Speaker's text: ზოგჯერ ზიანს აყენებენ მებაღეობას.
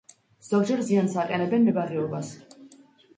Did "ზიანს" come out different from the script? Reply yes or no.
no